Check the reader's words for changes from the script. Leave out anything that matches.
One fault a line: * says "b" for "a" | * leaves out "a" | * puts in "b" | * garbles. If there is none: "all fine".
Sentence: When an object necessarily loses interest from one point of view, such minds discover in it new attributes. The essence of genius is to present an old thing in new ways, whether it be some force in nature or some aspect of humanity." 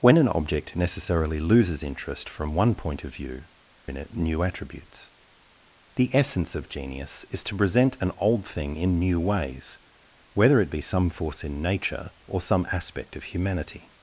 * leaves out "such minds discover"